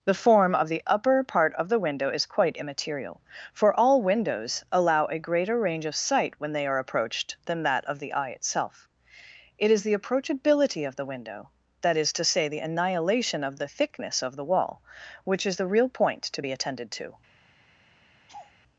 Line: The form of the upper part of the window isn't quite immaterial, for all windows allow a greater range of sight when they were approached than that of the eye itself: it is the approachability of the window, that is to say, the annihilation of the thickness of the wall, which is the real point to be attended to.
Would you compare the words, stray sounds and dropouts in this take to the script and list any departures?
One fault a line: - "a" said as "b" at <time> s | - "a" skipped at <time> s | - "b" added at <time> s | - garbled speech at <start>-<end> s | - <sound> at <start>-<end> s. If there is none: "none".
- "isn't" said as "is" at 2.1 s
- "were" said as "are" at 6.7 s
- laugh at 18.3-18.5 s